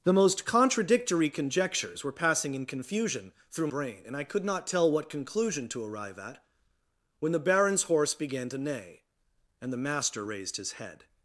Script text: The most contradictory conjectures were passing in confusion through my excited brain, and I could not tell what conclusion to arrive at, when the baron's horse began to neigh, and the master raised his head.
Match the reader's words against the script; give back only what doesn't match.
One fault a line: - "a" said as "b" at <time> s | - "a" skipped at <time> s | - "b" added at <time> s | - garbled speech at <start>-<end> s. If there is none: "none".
- "my excited" skipped at 3.7 s